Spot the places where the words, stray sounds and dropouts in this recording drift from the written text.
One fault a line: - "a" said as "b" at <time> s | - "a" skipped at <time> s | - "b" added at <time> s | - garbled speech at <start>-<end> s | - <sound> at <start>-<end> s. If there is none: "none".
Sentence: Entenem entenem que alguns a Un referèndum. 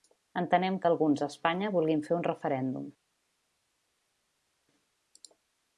- "entenem" skipped at 0.8 s
- "Espanya vulguin fer" added at 1.3 s